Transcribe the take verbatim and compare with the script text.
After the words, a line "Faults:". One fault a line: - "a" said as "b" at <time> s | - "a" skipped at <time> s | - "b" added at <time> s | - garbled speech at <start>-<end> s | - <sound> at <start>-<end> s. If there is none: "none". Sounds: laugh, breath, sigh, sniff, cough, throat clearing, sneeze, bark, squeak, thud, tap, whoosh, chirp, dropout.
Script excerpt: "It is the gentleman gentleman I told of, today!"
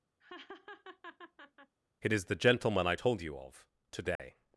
"It is the gentleman I told you of, today!"
Faults:
- laugh at 0.2-1.8 s
- "gentleman" skipped at 2.9 s
- "you" added at 3.2 s
- dropout at 4.2-4.2 s